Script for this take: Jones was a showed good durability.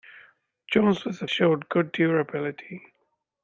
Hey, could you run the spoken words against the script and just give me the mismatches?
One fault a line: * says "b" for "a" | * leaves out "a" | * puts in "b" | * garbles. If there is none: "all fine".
all fine